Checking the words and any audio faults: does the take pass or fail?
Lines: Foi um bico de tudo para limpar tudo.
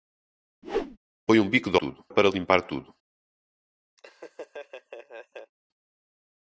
fail